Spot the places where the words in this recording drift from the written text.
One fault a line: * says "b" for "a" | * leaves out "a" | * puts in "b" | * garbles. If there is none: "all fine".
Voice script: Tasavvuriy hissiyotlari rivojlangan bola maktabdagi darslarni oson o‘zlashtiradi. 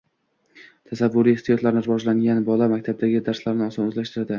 all fine